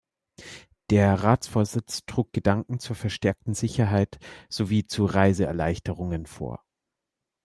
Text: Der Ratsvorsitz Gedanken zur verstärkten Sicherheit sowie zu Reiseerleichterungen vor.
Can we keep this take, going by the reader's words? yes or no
no